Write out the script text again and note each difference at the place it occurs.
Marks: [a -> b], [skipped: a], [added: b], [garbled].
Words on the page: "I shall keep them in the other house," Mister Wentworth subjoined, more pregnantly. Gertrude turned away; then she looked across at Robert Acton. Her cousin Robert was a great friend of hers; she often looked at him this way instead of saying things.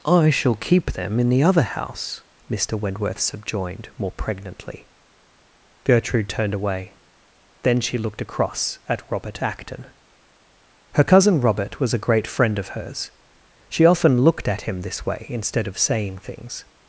"I shall keep them in the other house," Mister Wentworth subjoined, more pregnantly. Gertrude turned away; then she looked across at Robert Acton. Her cousin Robert was a great friend of hers; she often looked at him this way instead of saying things.